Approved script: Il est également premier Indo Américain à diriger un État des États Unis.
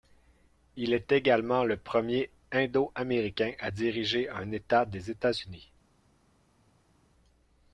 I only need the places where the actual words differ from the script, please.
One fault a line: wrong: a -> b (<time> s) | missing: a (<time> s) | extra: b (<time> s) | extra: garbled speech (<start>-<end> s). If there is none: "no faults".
extra: le (1.6 s)